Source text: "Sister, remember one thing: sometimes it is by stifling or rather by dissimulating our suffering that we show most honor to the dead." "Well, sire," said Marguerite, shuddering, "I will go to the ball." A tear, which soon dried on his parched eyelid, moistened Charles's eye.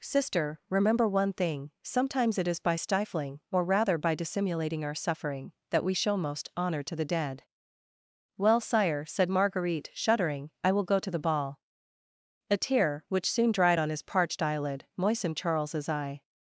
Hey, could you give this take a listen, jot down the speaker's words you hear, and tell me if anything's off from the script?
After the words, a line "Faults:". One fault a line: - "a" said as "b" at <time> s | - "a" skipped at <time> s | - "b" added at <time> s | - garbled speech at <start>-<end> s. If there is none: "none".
"Sister, remember one thing: sometimes it is by stifling or rather by dissimulating our suffering that we show most honor to the dead." "Well, sire," said Marguerite, shuddering, "I will go to the ball." A tear, which soon dried on his parched eyelid, moistened Charles's eye.
Faults:
none